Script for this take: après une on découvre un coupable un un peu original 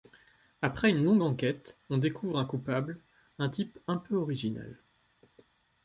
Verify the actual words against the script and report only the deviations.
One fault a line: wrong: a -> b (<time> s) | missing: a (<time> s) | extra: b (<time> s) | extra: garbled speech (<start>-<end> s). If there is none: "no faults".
extra: longue enquête (1.0 s)
extra: type (3.5 s)